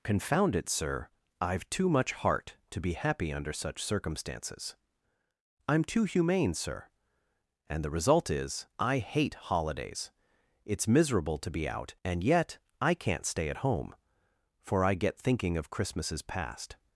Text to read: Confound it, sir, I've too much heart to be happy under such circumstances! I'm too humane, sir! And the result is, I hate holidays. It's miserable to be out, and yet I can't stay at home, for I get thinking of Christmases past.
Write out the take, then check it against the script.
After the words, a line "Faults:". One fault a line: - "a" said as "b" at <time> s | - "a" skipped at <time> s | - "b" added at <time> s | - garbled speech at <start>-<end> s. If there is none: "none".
Confound it, sir, I've too much heart to be happy under such circumstances! I'm too humane, sir! And the result is, I hate holidays. It's miserable to be out, and yet I can't stay at home, for I get thinking of Christmases past.
Faults:
none